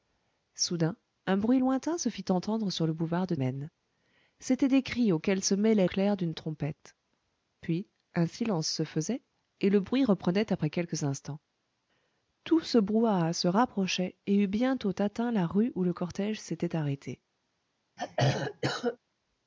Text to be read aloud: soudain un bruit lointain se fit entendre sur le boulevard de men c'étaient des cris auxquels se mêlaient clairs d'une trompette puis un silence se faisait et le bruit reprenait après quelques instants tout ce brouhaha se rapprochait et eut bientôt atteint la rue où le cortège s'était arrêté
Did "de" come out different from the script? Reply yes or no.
no